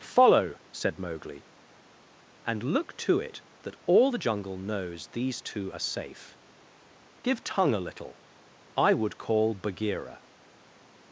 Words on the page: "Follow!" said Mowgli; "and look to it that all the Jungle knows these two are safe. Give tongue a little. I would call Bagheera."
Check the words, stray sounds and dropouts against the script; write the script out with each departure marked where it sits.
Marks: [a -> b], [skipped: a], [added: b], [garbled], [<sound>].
"Follow!" said Mowgli; "and look to it that all the Jungle knows these two are safe. Give tongue a little. I would call Bagheera."